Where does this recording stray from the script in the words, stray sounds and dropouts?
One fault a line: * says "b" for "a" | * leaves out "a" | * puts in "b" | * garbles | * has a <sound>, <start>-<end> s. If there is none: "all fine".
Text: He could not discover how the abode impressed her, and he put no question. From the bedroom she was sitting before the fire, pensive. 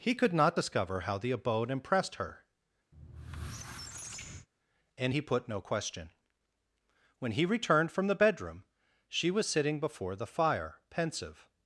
* has a squeak, 2.9-4.5 s
* puts in "When he returned"